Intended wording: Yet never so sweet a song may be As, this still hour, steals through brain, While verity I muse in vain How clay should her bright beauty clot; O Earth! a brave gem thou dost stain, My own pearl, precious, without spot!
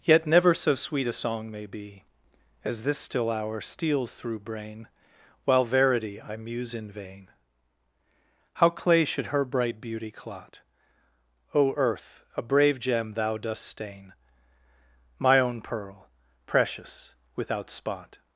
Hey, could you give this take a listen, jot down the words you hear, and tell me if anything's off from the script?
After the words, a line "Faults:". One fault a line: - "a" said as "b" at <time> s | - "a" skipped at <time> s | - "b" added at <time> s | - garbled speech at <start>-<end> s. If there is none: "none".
Yet never so sweet a song may be As, this still hour, steals through brain, While verity I muse in vain How clay should her bright beauty clot; O Earth! a brave gem thou dost stain, My own pearl, precious, without spot!
Faults:
none